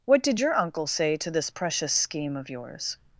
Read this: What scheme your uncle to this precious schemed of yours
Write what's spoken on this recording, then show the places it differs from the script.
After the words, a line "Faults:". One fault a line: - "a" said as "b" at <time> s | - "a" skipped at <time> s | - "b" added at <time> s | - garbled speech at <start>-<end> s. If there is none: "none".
What did your uncle say to this precious scheme of yours
Faults:
- "scheme" said as "did" at 0.2 s
- "say" added at 0.9 s
- "schemed" said as "scheme" at 1.9 s